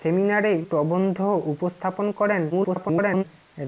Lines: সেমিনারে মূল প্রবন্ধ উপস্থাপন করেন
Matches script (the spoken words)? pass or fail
fail